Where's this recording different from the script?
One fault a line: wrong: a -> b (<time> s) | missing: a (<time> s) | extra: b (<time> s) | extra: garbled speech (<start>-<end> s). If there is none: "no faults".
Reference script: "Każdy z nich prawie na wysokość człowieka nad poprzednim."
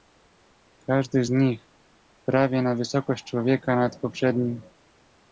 no faults